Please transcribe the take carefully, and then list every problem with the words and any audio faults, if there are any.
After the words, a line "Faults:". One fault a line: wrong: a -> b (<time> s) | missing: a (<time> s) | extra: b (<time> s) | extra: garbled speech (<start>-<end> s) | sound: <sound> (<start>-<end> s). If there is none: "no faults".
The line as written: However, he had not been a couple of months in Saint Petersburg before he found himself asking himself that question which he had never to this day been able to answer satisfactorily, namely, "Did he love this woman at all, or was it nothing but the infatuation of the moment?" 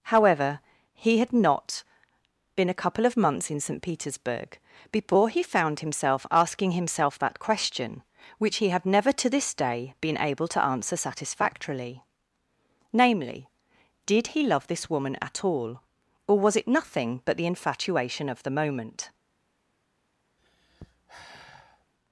However, he had not been a couple of months in Saint Petersburg before he found himself asking himself that question which he had never to this day been able to answer satisfactorily, namely, "Did he love this woman at all, or was it nothing but the infatuation of the moment?"
Faults:
sound: sigh (20.4-21.9 s)